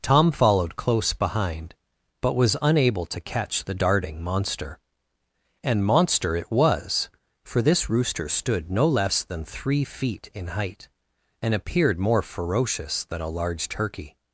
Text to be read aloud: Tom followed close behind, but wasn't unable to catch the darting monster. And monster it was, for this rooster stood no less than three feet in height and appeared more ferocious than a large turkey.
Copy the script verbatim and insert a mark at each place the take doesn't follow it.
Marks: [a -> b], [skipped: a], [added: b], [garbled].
Tom followed close behind, but [wasn't -> was] unable to catch the darting monster. And monster it was, for this rooster stood no less than three feet in height and appeared more ferocious than a large turkey.